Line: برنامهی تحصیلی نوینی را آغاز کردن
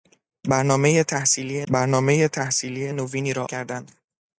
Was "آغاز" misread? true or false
true